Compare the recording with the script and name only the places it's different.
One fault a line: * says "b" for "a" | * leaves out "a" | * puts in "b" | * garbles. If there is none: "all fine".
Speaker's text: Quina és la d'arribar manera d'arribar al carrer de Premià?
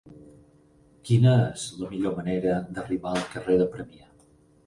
* says "millor" for "d'arribar"